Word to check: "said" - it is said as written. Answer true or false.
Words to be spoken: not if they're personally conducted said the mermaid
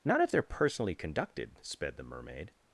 false